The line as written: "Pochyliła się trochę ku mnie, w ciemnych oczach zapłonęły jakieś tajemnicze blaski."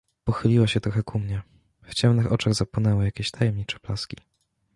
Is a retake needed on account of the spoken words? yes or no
no